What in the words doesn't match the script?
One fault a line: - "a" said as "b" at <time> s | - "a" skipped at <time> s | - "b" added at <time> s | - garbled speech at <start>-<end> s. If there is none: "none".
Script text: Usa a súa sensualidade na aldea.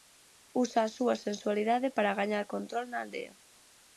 - "para gañar control" added at 2.0 s